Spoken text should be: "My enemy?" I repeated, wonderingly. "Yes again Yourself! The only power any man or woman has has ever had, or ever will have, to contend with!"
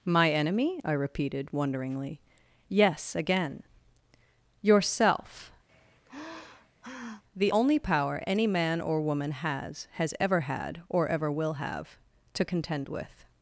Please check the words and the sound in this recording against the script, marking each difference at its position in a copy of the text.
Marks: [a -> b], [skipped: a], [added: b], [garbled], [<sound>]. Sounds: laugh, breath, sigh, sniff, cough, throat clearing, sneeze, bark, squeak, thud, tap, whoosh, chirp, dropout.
"My enemy?" I repeated, wonderingly. "Yes again Yourself! [sigh] The only power any man or woman has has ever had, or ever will have, to contend with!"